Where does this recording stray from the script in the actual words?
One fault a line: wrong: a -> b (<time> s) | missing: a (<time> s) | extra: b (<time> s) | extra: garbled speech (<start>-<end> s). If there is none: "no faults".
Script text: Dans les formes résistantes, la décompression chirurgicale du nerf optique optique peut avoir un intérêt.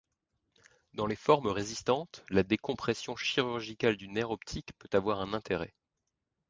missing: optique (4.7 s)